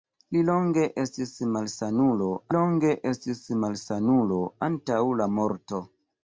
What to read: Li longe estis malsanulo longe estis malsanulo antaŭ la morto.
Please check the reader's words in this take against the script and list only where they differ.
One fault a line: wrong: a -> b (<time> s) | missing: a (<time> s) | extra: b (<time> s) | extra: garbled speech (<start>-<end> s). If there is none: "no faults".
no faults